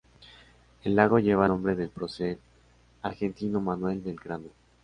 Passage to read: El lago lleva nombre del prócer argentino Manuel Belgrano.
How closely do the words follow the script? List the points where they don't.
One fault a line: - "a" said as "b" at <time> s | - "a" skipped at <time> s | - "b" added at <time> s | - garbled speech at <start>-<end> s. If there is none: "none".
none